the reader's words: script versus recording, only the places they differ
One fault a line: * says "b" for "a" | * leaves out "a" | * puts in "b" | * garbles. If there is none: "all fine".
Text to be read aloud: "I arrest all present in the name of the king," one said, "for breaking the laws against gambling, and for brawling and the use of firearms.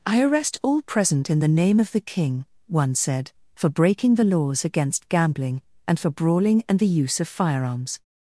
all fine